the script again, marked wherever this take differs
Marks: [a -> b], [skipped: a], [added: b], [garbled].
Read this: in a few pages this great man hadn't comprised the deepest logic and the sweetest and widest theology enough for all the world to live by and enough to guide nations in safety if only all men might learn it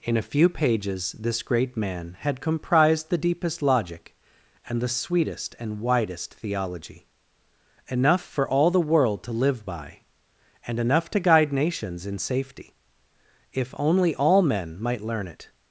in a few pages this great man [hadn't -> had] comprised the deepest logic and the sweetest and widest theology enough for all the world to live by and enough to guide nations in safety if only all men might learn it